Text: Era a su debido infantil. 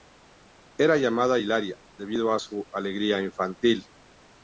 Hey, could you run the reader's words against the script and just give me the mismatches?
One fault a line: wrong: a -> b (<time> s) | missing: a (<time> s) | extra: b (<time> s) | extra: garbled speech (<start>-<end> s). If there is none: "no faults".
extra: llamada Hilaria debido (1.0 s)
wrong: debido -> alegría (2.7 s)